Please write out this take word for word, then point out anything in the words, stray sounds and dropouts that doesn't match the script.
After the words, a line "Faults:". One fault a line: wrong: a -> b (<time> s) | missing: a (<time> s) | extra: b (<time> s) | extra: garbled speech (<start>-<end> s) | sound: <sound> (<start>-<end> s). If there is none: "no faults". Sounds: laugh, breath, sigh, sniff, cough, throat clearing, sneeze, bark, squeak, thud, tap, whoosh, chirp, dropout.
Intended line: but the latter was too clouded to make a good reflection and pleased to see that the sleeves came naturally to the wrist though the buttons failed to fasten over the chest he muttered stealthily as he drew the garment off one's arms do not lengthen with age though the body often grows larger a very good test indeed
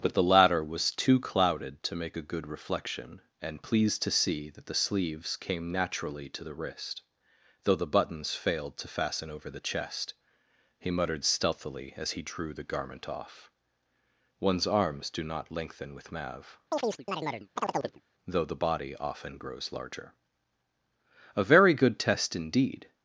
but the latter was too clouded to make a good reflection and pleased to see that the sleeves came naturally to the wrist though the buttons failed to fasten over the chest he muttered stealthily as he drew the garment off one's arms do not lengthen with mav though the body often grows larger a very good test indeed
Faults:
wrong: age -> mav (16.1 s)
sound: chirp (16.7-18.0 s)